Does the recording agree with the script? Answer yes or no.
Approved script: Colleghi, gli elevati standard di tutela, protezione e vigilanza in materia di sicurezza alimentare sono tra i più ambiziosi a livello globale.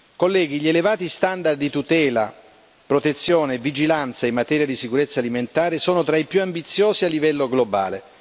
yes